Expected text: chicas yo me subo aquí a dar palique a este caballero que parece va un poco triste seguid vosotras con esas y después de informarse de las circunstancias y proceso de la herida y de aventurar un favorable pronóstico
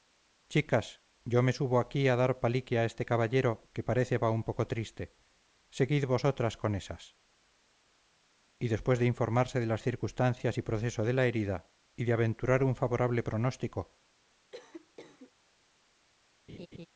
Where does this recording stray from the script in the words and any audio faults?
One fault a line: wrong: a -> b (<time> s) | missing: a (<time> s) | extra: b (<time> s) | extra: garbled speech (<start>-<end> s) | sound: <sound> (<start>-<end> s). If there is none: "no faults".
sound: cough (14.5-15.3 s)
sound: laugh (16.5-16.9 s)